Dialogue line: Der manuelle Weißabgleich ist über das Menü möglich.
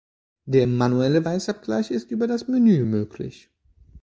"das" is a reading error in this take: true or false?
false